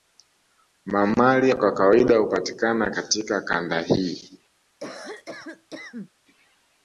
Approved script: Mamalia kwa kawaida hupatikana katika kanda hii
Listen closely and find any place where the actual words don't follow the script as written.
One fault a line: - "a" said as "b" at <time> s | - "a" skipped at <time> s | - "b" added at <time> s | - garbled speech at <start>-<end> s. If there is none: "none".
none